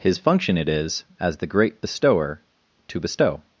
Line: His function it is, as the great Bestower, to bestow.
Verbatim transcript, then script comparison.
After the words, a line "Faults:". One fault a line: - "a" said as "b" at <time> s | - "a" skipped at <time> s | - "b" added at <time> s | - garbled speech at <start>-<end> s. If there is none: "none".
His function it is, as the great Bestower, to bestow.
Faults:
none